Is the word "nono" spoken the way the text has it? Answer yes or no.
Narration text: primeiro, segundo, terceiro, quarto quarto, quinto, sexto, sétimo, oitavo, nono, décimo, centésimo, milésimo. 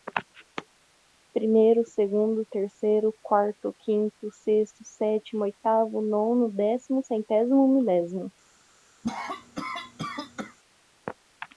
yes